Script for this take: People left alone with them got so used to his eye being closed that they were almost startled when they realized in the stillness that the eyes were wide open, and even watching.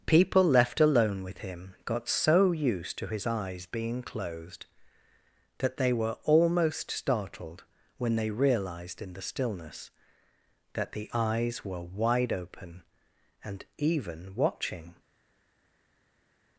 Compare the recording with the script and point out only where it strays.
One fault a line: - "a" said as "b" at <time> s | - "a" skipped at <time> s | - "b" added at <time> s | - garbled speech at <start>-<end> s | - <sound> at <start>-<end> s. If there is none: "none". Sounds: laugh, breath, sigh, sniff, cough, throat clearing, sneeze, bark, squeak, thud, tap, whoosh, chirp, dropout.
- "them" said as "him" at 1.4 s
- "eye" said as "eyes" at 3.3 s